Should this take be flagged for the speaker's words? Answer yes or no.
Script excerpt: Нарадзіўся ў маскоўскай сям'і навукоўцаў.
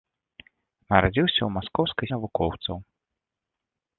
yes